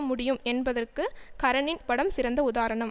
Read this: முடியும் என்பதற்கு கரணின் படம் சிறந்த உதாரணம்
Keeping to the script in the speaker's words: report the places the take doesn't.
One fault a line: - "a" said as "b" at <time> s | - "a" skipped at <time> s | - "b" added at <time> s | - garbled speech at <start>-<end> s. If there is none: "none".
none